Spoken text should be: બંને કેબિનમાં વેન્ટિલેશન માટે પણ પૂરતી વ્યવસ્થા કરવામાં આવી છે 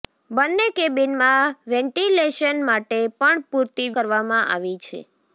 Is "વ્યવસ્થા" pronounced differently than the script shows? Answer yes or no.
yes